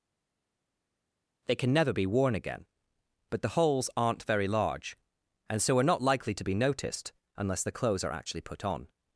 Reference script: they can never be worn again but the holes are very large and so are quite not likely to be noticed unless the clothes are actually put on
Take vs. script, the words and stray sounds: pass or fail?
fail